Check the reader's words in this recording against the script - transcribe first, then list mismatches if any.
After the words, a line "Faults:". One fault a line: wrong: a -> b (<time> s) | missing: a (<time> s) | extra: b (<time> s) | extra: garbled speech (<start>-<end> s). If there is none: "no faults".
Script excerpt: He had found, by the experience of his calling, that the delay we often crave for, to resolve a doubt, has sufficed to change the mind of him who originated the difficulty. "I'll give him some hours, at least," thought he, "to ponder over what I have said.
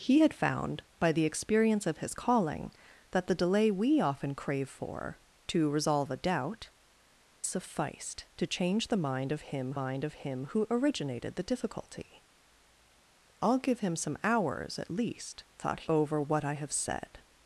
He had found, by the experience of his calling, that the delay we often crave for, to resolve a doubt, sufficed to change the mind of him mind of him who originated the difficulty. "I'll give him some hours, at least," thought over what I have said.
Faults:
missing: has (6.7 s)
extra: mind of him (9.8 s)
missing: he to ponder (15.9 s)